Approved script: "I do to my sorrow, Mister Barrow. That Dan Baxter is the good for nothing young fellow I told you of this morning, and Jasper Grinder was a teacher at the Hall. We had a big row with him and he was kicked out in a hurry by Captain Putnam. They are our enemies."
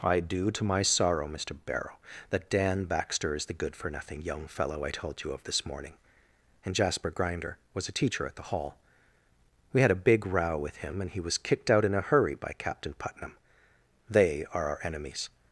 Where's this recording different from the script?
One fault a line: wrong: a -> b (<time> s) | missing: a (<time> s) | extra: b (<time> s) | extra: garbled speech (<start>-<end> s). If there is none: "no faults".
no faults